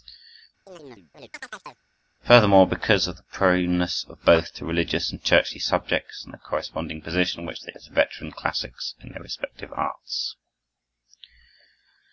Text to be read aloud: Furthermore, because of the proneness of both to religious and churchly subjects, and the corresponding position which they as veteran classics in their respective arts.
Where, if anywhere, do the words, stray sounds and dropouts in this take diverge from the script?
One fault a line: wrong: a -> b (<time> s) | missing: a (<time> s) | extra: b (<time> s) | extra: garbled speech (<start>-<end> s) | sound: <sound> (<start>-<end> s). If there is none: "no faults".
sound: chirp (0.7-1.8 s)